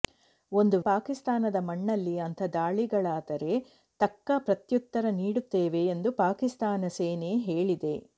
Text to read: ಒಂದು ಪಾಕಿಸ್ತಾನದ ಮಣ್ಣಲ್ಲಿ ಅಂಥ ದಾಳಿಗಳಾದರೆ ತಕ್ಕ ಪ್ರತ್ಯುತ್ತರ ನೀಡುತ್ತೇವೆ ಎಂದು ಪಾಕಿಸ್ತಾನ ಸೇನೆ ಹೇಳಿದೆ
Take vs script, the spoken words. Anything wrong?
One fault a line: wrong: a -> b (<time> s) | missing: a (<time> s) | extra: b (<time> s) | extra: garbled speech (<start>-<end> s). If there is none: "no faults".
no faults